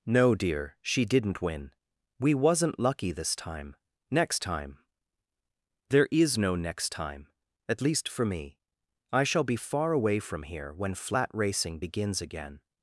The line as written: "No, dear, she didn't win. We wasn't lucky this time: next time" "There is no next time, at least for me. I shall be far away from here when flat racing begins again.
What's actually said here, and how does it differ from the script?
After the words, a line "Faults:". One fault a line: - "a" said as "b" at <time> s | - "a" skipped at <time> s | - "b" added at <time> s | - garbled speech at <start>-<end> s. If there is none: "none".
"No, dear, she didn't win. We wasn't lucky this time: next time" "There is no next time, at least for me. I shall be far away from here when flat racing begins again.
Faults:
none